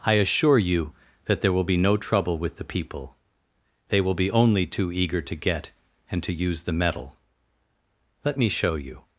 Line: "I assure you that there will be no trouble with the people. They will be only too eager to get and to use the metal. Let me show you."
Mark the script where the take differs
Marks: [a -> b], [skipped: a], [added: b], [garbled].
"I assure you that there will be no trouble with the people. They will be only too eager to get and to use the metal. Let me show you."